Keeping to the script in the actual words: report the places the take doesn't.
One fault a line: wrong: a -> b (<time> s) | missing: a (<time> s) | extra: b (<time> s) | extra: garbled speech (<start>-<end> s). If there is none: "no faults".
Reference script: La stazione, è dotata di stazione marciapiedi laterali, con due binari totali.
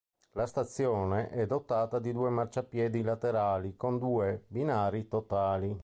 wrong: stazione -> due (2.1 s)